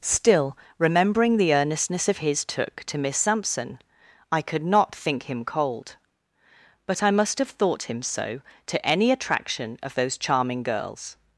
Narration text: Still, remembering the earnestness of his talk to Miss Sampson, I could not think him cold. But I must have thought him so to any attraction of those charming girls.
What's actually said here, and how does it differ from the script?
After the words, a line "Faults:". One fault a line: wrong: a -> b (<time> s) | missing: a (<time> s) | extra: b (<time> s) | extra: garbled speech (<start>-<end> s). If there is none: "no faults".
Still, remembering the earnestness of his took to Miss Sampson, I could not think him cold. But I must have thought him so to any attraction of those charming girls.
Faults:
wrong: talk -> took (2.4 s)